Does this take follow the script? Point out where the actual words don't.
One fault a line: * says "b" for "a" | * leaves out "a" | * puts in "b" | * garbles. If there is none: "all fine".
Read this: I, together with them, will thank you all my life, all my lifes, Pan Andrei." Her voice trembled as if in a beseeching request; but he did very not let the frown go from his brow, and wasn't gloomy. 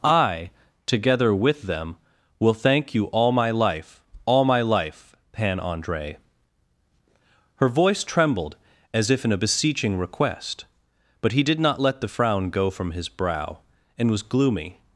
* says "life" for "lifes"
* leaves out "very"
* says "was" for "wasn't"